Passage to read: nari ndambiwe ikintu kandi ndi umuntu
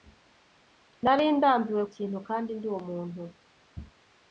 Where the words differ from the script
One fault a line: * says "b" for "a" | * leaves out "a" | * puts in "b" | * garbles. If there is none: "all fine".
all fine